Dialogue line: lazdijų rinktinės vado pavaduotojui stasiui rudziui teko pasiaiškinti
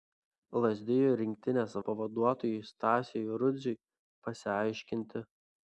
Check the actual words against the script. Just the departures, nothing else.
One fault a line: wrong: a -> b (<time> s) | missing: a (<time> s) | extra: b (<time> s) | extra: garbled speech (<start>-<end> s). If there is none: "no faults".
missing: vado (1.8 s)
missing: teko (3.8 s)